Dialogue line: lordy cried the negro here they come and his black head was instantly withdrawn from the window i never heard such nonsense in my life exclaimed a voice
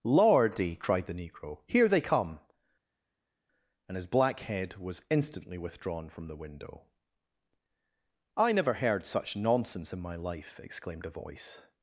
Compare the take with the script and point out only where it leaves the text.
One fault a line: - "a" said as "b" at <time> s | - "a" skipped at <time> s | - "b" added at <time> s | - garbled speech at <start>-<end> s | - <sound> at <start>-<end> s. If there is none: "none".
none